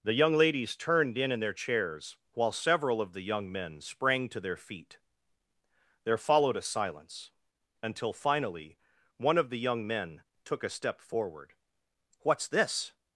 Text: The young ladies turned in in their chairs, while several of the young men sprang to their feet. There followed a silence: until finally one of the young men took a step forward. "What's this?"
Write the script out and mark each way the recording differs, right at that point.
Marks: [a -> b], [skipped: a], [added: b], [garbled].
The young ladies turned in in their chairs, while several of the young men sprang to their feet. There followed a silence: until finally one of the young men took a step forward. "What's this?"